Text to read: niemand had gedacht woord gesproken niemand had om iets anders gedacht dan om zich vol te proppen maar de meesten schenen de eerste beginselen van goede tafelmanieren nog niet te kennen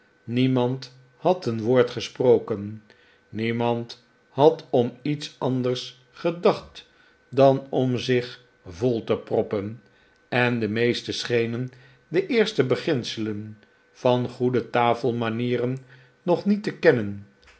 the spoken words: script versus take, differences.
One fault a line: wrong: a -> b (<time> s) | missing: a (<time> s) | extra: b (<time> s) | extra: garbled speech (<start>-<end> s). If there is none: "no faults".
wrong: gedacht -> een (1.4 s)
wrong: maar -> en (10.3 s)